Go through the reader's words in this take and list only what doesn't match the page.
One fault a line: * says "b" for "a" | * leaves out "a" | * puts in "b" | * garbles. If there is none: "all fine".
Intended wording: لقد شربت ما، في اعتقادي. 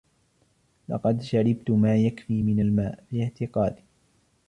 * puts in "يكفي من الماء"